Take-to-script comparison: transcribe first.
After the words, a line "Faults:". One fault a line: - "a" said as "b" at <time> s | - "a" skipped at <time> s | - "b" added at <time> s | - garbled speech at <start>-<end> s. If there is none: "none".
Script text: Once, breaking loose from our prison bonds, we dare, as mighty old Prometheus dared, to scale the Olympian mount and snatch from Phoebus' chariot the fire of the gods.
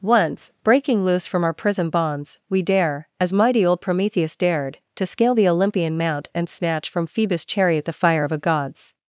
Once, breaking loose from our prison bonds, we dare, as mighty old Prometheus dared, to scale the Olympian mount and snatch from Phoebus' chariot the fire of a gods.
Faults:
- "the" said as "a" at 8.3 s